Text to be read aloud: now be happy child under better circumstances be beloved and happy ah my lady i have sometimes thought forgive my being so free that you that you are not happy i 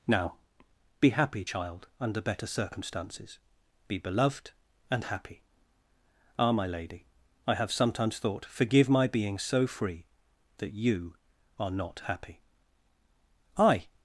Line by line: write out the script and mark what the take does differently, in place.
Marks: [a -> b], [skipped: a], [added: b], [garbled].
now be happy child under better circumstances be beloved and happy ah my lady i have sometimes thought forgive my being so free that you [skipped: that you] are not happy i